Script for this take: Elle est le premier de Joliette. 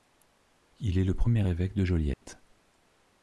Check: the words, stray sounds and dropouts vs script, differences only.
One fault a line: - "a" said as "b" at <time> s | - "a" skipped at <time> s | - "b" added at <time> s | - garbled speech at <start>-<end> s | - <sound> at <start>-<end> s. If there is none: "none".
- "Elle" said as "Il" at 0.8 s
- "évêque" added at 1.4 s
- dropout at 2.1-2.2 s